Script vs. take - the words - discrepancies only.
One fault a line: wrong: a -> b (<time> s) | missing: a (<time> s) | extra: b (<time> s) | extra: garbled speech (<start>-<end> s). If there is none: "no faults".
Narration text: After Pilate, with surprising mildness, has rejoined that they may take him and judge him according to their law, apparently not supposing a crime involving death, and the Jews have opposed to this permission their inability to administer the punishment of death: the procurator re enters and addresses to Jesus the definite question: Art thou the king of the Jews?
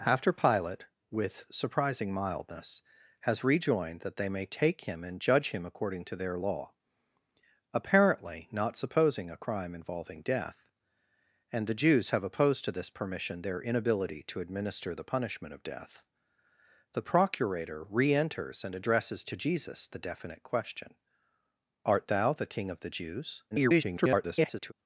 extra: garbled speech (23.5-24.7 s)